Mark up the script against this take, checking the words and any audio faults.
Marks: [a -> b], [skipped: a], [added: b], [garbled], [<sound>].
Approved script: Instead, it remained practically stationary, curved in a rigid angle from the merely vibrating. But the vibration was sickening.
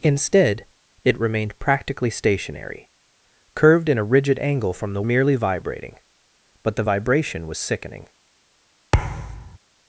Instead, it remained practically stationary, curved in a rigid angle from the merely vibrating. But the vibration was sickening. [thud]